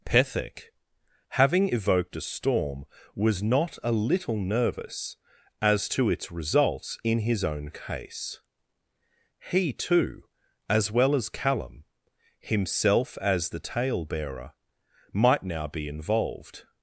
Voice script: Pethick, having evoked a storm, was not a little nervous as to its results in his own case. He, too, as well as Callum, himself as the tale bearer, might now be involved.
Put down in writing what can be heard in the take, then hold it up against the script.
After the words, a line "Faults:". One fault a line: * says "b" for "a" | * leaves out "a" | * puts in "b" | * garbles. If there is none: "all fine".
Pethick, having evoked a storm, was not a little nervous as to its results in his own case. He, too, as well as Callum, himself as the tale bearer, might now be involved.
Faults:
all fine